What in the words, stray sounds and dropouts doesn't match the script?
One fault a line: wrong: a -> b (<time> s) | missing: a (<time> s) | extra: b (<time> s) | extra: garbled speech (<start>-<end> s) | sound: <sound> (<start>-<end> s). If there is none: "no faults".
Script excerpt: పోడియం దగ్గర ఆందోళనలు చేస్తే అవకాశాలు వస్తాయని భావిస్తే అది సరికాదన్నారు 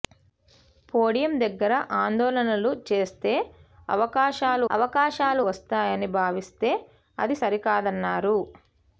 extra: అవకాశాలు (4.7 s)